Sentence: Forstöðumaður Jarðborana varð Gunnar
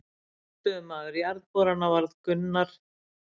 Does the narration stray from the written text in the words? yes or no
no